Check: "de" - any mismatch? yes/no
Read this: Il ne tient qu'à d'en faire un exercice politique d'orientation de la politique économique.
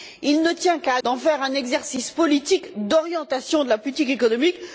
no